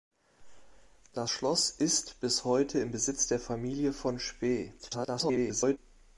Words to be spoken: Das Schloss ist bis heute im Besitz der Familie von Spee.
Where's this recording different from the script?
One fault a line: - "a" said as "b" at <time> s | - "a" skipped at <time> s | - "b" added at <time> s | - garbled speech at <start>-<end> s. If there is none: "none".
- garbled speech at 4.8-5.8 s